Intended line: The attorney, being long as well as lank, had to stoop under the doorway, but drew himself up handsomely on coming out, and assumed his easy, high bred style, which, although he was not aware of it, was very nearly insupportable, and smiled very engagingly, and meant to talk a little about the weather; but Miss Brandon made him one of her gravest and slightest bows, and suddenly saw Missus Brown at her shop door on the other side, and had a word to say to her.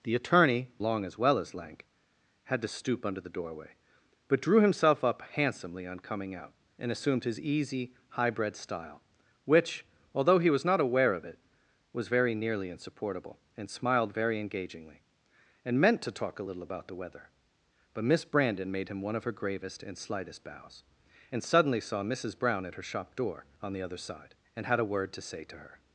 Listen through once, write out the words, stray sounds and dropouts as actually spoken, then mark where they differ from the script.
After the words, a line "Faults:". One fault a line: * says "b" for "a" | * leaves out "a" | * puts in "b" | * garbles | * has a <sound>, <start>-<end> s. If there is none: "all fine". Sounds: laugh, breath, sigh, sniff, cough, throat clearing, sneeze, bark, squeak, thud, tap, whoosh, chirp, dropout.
The attorney, long as well as lank, had to stoop under the doorway, but drew himself up handsomely on coming out, and assumed his easy, high bred style, which, although he was not aware of it, was very nearly insupportable, and smiled very engagingly, and meant to talk a little about the weather; but Miss Brandon made him one of her gravest and slightest bows, and suddenly saw Missus Brown at her shop door on the other side, and had a word to say to her.
Faults:
* leaves out "being"